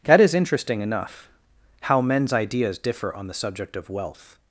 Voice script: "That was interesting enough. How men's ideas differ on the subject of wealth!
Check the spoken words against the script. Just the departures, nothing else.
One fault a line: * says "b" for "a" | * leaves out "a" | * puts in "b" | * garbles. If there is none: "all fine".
* says "is" for "was"